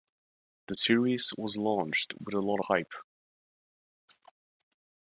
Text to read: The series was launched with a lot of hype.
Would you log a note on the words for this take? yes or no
yes